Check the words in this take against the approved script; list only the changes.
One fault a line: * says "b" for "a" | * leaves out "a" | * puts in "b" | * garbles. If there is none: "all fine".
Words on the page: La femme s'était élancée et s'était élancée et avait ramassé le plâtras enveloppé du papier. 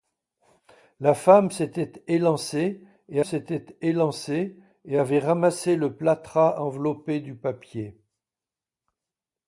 all fine